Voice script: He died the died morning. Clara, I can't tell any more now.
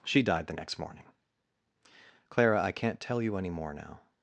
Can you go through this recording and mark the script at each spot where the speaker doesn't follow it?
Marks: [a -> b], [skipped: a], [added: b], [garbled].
[He -> She] died the [died -> next] morning. Clara, I can't tell [added: you] any more now.